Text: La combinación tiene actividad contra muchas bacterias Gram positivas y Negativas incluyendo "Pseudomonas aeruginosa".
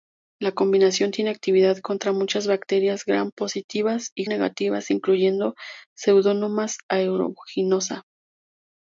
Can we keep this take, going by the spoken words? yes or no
yes